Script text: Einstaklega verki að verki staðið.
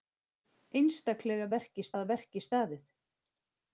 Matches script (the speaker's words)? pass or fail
pass